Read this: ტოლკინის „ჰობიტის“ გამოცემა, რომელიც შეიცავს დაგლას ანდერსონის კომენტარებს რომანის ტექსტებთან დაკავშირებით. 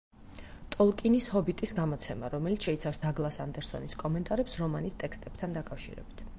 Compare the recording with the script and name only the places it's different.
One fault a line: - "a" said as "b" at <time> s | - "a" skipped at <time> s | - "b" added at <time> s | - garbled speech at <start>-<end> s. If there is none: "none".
none